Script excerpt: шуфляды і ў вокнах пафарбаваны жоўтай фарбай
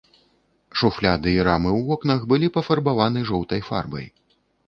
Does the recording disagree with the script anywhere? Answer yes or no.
yes